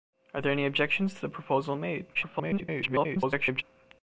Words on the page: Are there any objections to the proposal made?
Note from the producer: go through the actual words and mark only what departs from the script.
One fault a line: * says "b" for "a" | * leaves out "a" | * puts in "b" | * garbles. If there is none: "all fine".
* garbles